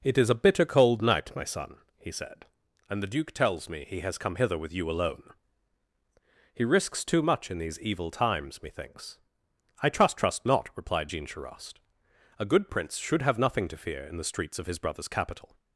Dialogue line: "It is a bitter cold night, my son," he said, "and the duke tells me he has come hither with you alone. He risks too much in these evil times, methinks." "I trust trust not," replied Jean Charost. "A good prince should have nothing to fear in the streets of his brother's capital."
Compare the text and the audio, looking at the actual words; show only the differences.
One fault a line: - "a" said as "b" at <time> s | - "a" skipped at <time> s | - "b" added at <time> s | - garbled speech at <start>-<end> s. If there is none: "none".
none